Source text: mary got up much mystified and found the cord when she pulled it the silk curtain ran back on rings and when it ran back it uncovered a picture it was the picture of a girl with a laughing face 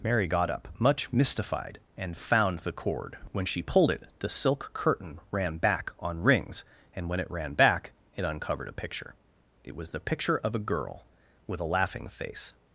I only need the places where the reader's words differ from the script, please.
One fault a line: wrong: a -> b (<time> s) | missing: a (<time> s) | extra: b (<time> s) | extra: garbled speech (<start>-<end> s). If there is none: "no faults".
no faults